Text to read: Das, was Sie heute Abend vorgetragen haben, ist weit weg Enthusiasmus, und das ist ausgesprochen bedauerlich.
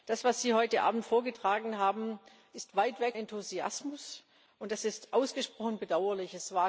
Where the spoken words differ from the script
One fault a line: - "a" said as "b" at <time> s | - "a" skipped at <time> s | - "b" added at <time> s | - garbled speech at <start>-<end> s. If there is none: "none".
none